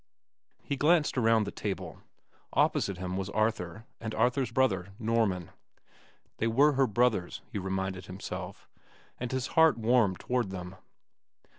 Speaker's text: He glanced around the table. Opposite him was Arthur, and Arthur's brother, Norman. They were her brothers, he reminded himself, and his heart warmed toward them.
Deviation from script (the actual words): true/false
false